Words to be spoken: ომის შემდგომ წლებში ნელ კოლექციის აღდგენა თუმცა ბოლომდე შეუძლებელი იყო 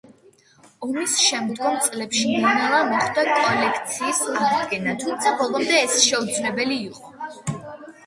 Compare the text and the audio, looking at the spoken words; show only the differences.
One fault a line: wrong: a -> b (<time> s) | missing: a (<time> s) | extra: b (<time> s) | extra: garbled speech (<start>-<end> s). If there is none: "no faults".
extra: ნელა მოხდა (2.6 s)
extra: ეს (5.8 s)